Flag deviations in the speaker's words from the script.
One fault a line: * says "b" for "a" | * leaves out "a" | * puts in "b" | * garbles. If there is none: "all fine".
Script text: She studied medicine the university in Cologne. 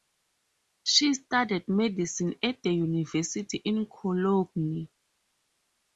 * puts in "at"